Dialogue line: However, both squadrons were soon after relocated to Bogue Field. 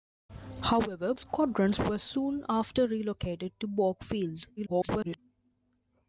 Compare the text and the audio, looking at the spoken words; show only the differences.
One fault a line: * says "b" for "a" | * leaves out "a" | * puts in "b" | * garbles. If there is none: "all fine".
* leaves out "both"
* garbles